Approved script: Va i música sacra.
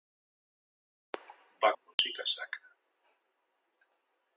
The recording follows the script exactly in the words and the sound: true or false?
false